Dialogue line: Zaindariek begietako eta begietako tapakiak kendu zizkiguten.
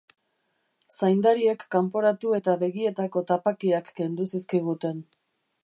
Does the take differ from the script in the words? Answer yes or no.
yes